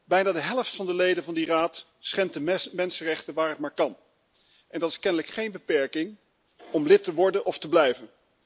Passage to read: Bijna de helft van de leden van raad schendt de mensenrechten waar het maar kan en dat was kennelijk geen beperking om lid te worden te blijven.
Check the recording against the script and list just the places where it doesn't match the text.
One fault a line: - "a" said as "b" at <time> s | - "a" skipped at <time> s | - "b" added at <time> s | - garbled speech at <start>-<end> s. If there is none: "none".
- "die" added at 1.3 s
- "was" said as "is" at 4.9 s
- "of" added at 7.5 s